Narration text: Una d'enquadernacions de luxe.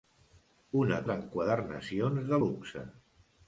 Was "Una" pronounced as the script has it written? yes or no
yes